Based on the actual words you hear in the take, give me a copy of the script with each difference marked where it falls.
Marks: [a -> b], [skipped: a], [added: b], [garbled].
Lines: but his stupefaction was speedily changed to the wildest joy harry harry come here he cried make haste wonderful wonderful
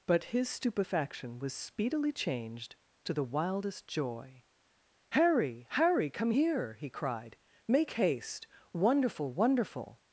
but his stupefaction was speedily changed to the wildest joy harry harry come here he cried make haste wonderful wonderful